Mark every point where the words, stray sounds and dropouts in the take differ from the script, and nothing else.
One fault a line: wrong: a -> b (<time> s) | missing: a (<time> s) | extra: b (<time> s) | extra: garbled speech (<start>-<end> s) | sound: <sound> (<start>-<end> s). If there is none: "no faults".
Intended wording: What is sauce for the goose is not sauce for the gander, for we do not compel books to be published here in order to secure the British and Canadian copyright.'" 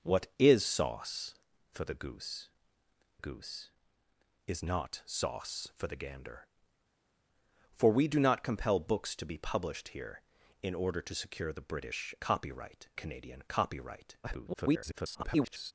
extra: goose (3.2 s)
wrong: and -> copyright (12.2 s)
extra: garbled speech (14.2-15.7 s)